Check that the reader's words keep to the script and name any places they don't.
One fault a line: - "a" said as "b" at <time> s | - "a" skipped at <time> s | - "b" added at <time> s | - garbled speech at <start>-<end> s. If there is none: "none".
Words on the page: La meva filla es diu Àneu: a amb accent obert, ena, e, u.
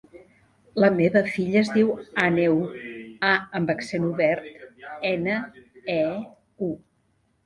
none